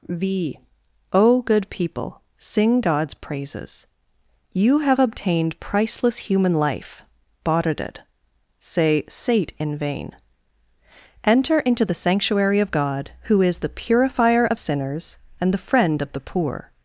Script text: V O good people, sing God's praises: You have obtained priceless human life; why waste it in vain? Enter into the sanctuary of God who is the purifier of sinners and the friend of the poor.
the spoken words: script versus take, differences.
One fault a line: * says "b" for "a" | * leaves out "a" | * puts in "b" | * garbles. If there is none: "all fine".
* says "bought it say sate" for "why waste it"